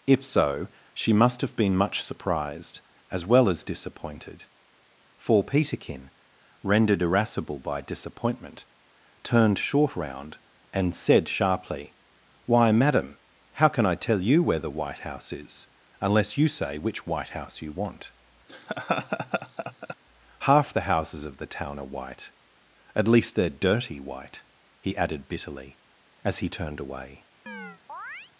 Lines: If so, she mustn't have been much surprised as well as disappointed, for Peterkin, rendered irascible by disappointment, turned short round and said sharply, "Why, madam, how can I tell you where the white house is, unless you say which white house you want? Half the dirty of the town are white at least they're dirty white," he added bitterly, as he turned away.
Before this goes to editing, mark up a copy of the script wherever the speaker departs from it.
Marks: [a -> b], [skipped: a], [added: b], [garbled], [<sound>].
If so, she [mustn't -> must] have been much surprised as well as disappointed, for Peterkin, rendered irascible by disappointment, turned short round and said sharply, "Why, madam, how can I tell you where the white house is, unless you say which white house you want? [laugh] Half the [dirty -> houses] of the town are white at least they're dirty white," he added bitterly, as he turned away. [chirp]